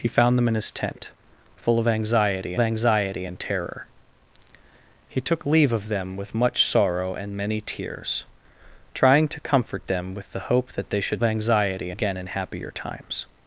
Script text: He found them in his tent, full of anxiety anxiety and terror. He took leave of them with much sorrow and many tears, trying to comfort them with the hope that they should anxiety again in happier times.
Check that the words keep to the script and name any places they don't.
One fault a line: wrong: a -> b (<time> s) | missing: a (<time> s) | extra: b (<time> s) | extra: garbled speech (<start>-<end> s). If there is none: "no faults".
no faults